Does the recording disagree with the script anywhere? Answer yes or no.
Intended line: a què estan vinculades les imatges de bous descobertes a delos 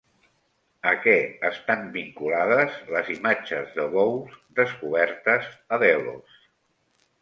no